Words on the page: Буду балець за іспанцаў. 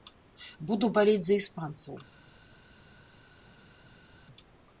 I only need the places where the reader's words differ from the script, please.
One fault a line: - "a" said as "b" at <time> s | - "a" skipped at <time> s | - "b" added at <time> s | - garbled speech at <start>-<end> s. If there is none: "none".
none